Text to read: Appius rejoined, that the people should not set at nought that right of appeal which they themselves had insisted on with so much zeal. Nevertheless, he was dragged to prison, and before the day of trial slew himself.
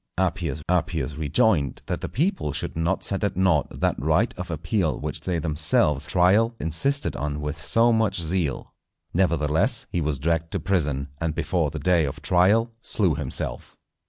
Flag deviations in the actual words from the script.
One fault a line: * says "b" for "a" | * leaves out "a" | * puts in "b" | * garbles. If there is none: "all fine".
* puts in "appius"
* says "trial" for "had"